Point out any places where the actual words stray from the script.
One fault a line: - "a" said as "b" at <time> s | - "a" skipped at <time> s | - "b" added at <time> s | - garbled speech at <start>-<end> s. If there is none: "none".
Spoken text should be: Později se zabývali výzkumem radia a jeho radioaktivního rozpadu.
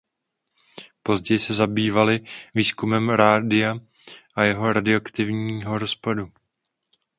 none